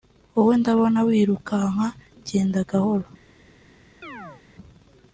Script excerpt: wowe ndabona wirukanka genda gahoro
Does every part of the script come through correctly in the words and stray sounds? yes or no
no